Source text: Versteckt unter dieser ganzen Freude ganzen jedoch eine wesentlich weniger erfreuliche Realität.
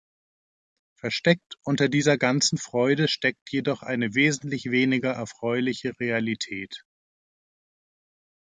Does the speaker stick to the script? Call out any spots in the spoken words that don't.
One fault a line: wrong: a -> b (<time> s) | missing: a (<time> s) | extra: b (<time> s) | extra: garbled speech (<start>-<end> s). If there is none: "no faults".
wrong: ganzen -> steckt (3.1 s)